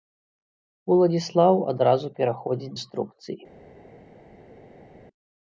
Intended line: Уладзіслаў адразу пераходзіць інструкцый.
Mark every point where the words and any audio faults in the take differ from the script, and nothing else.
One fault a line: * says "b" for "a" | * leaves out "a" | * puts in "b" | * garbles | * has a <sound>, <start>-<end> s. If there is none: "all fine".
all fine